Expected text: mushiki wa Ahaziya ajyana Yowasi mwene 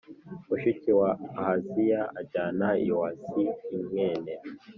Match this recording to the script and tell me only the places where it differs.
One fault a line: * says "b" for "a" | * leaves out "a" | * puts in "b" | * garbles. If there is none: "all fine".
all fine